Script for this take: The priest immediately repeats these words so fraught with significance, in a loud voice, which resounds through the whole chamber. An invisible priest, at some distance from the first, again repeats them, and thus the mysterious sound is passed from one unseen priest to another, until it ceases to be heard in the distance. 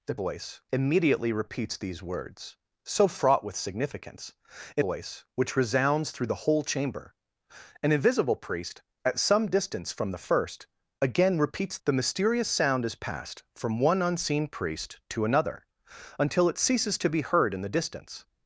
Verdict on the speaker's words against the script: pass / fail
fail